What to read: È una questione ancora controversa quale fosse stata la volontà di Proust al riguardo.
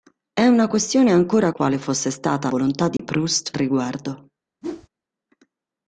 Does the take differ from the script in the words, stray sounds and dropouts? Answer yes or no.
yes